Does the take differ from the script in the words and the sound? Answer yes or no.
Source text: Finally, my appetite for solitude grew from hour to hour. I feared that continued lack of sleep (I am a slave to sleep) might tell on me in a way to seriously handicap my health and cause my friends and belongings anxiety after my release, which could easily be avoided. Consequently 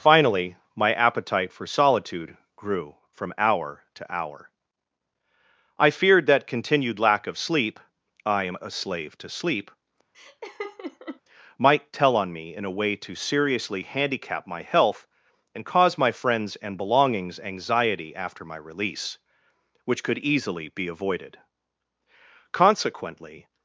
yes